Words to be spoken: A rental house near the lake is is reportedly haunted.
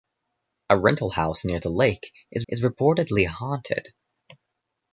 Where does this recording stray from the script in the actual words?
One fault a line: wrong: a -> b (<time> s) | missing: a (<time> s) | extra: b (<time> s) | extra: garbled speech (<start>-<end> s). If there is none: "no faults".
no faults